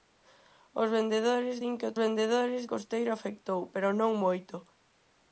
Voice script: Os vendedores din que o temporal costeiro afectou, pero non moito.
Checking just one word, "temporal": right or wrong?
wrong